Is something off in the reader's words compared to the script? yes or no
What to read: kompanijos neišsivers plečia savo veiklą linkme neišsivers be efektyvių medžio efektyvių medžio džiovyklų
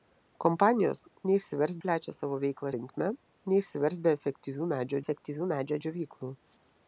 no